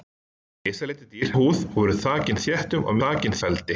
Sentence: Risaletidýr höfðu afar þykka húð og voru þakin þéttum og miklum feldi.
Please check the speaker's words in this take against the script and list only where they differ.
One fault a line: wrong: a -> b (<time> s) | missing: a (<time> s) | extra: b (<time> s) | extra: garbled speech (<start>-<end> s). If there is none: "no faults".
missing: höfðu afar þykka (1.3 s)
wrong: miklum -> þakin (3.0 s)